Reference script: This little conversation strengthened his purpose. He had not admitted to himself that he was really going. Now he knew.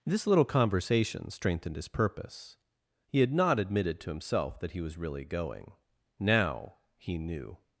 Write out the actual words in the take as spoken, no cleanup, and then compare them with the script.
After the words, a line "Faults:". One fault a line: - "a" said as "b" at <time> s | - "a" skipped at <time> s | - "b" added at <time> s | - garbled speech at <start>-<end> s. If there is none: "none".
This little conversation strengthened his purpose. He had not admitted to himself that he was really going. Now he knew.
Faults:
none